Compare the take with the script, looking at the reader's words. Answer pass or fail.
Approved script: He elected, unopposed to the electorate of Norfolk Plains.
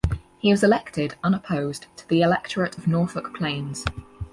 fail